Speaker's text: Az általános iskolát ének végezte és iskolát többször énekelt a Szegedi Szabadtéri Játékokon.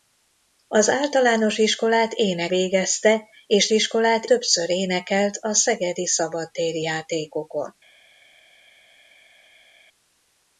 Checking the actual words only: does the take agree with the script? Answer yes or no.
yes